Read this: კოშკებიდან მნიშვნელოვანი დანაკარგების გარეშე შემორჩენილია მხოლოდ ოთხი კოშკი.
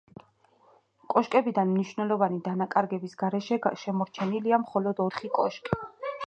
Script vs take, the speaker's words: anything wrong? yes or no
no